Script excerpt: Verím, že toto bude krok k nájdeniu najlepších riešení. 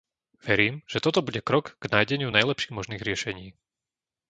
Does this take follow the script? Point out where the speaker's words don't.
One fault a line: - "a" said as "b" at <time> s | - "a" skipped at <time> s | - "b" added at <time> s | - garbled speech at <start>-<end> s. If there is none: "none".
- "možných" added at 2.8 s